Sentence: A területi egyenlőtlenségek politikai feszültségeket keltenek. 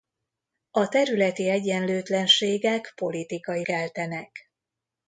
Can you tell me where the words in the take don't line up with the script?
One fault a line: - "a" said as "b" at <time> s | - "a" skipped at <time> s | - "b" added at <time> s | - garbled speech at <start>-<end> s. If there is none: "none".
- "feszültségeket" skipped at 3.6 s